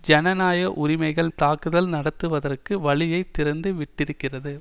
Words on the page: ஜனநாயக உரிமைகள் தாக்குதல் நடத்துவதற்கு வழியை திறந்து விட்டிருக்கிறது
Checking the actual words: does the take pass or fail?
pass